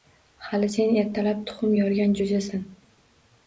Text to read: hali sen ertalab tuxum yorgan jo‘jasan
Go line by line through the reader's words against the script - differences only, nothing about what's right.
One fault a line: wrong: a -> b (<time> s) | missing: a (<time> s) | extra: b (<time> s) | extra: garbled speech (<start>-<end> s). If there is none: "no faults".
no faults